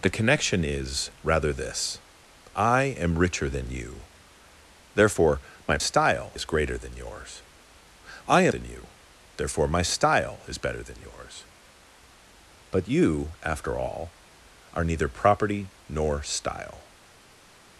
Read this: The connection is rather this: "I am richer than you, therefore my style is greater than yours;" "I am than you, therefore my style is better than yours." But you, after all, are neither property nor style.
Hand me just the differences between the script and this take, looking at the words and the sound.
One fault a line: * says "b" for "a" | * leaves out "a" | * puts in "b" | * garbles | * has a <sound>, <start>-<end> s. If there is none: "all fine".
all fine